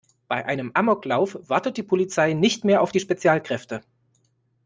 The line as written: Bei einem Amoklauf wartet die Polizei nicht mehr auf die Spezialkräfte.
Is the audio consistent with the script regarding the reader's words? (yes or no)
yes